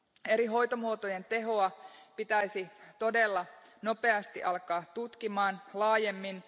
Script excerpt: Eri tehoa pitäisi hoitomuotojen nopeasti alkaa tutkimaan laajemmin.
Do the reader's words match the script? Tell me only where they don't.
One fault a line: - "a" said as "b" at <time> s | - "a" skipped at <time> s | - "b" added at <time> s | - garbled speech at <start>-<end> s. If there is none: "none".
- "hoitomuotojen" added at 0.5 s
- "hoitomuotojen" said as "todella" at 3.0 s